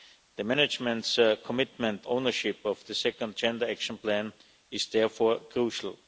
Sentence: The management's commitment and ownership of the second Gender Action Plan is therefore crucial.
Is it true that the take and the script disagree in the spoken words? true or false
true